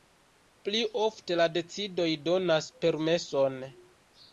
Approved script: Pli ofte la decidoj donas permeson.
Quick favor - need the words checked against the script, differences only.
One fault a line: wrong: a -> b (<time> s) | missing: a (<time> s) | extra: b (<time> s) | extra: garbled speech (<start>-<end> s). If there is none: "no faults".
no faults